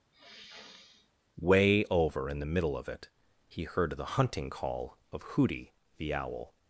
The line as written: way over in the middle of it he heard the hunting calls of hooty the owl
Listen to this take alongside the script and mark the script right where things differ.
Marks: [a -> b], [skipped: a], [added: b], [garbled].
way over in the middle of it he heard the hunting [calls -> call] of hooty the owl